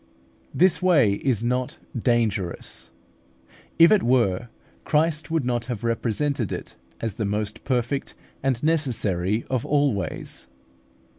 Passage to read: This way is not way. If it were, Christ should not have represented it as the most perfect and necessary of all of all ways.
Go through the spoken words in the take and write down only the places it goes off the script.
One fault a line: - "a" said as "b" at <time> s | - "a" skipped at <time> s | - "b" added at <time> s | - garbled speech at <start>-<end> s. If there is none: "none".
- "way" said as "dangerous" at 1.9 s
- "should" said as "would" at 5.3 s
- "of all" skipped at 9.9 s